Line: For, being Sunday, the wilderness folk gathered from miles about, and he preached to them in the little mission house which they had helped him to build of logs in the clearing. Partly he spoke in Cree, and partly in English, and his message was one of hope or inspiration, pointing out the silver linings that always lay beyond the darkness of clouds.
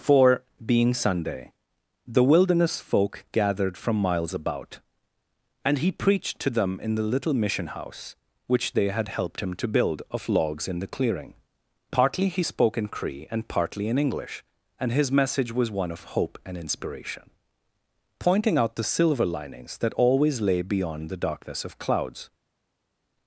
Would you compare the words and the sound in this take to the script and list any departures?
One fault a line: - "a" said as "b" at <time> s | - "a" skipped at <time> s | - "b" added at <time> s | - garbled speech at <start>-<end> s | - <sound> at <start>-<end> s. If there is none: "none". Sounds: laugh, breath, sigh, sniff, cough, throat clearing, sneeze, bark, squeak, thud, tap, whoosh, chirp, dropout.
- "or" said as "and" at 16.5 s